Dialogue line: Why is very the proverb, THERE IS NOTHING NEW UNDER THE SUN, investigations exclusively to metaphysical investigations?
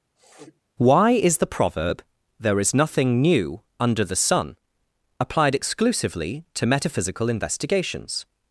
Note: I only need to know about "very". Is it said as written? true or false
false